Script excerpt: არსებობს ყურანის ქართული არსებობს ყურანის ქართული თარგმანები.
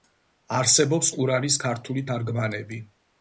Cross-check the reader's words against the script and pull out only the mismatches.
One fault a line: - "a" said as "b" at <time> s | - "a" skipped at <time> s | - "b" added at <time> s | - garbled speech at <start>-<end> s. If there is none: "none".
- "არსებობს ყურანის ქართული" skipped at 2.0 s